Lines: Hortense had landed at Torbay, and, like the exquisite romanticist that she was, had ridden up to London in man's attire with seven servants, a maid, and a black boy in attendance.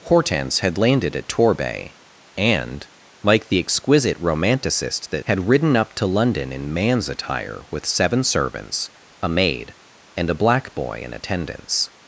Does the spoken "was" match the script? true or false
false